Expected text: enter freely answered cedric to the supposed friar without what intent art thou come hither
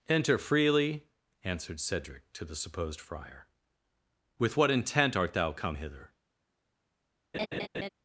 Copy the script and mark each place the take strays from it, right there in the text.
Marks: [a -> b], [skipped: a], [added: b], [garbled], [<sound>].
enter freely answered cedric to the supposed friar [without -> with] what intent art thou come hither [laugh]